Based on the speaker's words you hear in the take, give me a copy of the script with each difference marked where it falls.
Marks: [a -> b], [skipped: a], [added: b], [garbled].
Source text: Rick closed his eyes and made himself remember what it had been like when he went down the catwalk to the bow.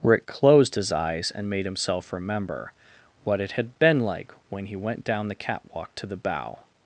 Rick closed his eyes and made himself remember what it had been like when he went down the catwalk to the bow.